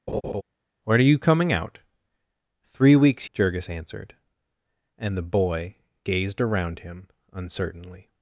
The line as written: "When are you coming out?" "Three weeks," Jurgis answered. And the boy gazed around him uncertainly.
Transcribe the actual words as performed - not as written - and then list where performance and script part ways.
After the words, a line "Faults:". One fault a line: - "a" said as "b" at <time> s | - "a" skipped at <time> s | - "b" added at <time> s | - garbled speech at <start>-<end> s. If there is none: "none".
"When are you coming out?" "Three weeks," Jurgis answered. And the boy gazed around him uncertainly.
Faults:
none